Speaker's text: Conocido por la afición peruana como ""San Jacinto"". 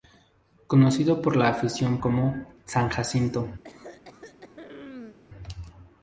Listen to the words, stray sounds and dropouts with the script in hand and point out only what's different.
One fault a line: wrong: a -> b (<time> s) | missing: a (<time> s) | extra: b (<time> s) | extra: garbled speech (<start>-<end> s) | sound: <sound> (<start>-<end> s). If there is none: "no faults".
missing: peruana (2.0 s)
sound: throat clearing (3.6-5.2 s)